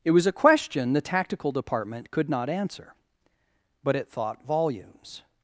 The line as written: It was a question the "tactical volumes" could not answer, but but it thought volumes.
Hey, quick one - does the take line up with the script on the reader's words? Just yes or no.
no